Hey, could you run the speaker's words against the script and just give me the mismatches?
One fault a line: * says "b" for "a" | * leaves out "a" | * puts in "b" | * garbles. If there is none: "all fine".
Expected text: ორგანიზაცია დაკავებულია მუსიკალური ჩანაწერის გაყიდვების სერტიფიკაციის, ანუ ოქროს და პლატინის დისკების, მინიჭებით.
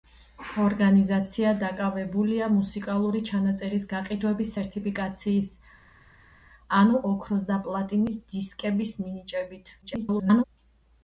* garbles